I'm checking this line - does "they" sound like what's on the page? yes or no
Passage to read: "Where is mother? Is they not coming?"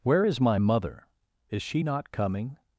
no